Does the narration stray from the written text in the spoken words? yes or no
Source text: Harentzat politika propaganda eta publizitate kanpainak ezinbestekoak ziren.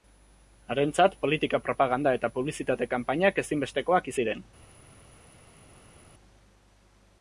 no